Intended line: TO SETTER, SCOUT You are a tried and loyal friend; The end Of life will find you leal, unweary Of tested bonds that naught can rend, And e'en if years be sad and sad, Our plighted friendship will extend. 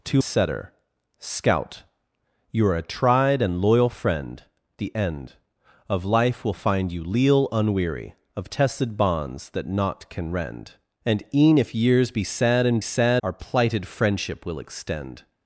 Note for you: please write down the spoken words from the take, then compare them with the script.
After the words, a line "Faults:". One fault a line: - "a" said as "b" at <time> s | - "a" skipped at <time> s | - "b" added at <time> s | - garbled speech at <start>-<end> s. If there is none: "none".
TO SETTER, SCOUT You are a tried and loyal friend; The end Of life will find you leal, unweary Of tested bonds that naught can rend, And e'en if years be sad and sad, Our plighted friendship will extend.
Faults:
none